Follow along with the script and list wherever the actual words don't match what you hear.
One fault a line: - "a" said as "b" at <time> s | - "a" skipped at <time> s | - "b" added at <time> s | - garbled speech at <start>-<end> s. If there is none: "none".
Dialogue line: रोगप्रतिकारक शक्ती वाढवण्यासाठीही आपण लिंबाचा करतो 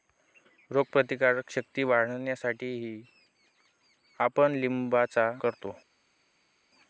none